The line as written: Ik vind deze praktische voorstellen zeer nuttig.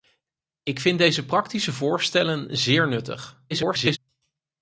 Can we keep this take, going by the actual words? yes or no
no